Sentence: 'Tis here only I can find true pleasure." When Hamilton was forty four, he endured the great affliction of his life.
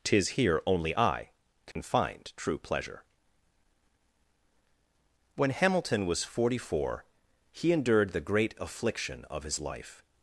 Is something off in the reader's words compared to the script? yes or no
no